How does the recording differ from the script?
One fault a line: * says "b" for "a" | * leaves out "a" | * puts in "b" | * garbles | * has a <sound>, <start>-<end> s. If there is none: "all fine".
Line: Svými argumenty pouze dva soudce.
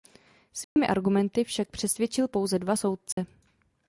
* has a dropout, 0.6-0.8 s
* puts in "však přesvědčil"
* has a dropout, 3.1-3.2 s